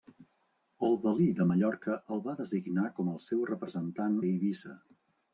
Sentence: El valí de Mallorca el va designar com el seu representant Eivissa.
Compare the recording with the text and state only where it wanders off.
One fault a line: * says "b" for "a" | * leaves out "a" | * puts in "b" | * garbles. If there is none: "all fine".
all fine